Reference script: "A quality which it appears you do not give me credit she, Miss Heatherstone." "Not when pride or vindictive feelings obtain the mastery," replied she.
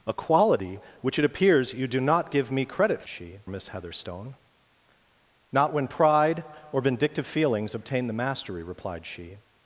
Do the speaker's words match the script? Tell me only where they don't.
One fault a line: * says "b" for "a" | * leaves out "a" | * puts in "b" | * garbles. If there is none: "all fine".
all fine